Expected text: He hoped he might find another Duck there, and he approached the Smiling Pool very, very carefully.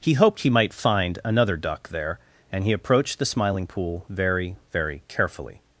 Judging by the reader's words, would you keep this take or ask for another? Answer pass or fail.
pass